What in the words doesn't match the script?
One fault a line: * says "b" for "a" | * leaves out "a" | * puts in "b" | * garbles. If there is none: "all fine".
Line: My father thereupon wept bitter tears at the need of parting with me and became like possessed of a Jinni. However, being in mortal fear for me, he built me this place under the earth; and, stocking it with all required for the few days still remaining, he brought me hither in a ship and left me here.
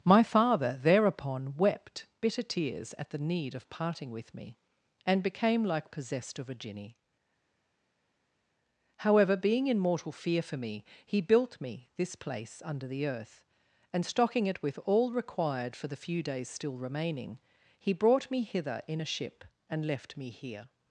all fine